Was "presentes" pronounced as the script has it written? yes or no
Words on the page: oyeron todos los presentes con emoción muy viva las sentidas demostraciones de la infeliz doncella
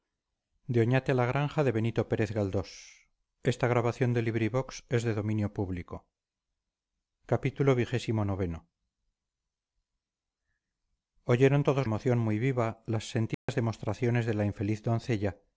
no